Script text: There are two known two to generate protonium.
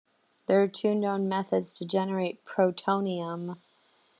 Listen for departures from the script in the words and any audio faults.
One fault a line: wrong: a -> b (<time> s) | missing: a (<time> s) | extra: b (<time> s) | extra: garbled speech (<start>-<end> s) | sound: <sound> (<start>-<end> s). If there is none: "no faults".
wrong: two -> methods (1.3 s)